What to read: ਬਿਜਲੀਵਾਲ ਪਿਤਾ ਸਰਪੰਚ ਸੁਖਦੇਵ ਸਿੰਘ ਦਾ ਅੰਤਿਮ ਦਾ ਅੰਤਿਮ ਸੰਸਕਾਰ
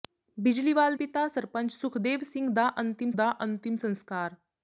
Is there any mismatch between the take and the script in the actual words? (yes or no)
no